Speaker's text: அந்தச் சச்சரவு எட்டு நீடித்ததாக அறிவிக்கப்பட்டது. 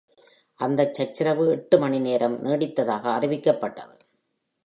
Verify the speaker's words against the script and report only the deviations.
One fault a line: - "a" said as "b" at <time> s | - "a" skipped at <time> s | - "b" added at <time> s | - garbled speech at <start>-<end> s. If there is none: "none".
- "மணி நேரம்" added at 1.8 s